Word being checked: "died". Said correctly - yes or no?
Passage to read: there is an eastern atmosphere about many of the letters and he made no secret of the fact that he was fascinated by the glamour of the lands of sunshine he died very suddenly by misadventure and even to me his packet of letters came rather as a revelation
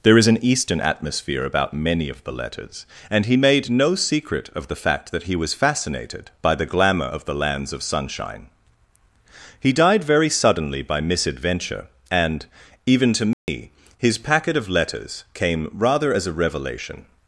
yes